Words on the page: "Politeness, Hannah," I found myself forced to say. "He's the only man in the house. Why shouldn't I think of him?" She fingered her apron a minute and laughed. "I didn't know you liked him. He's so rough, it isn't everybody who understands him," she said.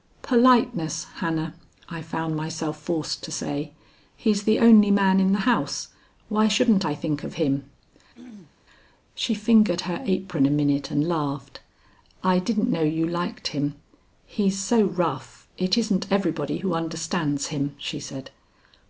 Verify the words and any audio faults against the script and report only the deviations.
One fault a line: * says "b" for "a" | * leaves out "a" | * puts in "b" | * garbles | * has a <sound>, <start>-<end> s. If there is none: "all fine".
* has a throat clearing, 8.1-8.6 s